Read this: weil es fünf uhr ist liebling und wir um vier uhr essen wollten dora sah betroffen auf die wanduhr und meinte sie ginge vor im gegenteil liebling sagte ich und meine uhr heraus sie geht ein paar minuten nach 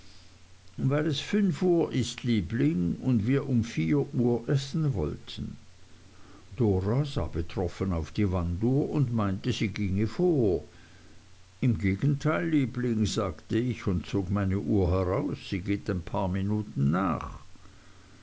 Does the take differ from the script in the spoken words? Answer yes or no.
yes